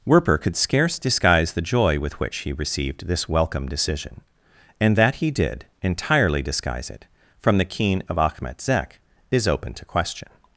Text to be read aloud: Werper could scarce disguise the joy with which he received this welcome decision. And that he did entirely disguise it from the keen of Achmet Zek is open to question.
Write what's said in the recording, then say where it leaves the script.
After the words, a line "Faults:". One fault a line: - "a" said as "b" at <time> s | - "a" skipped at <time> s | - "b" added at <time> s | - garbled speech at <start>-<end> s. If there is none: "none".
Werper could scarce disguise the joy with which he received this welcome decision. And that he did entirely disguise it from the keen of Achmet Zek is open to question.
Faults:
none